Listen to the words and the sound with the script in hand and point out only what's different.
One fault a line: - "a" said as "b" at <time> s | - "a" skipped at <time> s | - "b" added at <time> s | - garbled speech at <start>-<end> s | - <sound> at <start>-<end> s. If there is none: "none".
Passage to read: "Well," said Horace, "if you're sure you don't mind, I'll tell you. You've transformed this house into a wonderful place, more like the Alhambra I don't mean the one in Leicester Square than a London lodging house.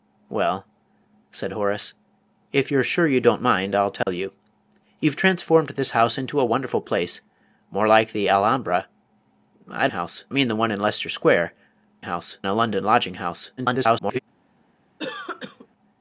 - dropout at 4.0-4.1 s
- "don't" said as "house" at 9.9 s
- "than" said as "house" at 12.0 s
- garbled speech at 13.6-14.2 s
- cough at 15.0-15.7 s